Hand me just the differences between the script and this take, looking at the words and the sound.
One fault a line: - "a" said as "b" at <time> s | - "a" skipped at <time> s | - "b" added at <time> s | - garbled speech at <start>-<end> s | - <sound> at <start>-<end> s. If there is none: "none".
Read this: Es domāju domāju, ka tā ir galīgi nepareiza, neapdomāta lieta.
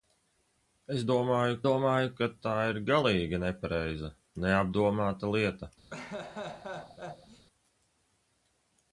- laugh at 5.9-7.5 s